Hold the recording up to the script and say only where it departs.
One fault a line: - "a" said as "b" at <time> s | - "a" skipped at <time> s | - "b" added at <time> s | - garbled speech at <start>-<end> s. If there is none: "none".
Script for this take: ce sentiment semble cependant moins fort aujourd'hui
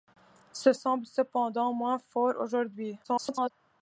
- "sentiment" skipped at 0.7 s
- garbled speech at 3.0-3.5 s